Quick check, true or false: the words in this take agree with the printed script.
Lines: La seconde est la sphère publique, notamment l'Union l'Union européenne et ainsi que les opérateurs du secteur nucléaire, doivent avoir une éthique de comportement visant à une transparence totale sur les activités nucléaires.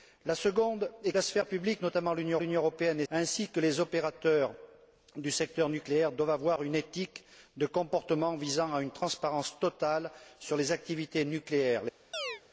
true